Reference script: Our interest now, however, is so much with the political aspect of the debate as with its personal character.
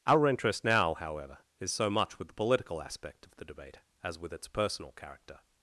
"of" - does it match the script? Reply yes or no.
yes